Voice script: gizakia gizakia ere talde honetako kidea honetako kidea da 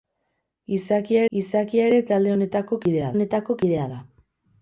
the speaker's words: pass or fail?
pass